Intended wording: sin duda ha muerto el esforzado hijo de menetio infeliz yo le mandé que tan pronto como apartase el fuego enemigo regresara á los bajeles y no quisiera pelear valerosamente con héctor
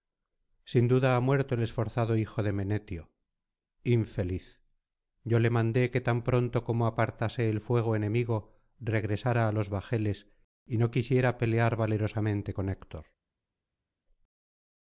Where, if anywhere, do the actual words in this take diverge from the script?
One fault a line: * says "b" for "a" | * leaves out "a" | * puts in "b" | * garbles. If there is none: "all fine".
all fine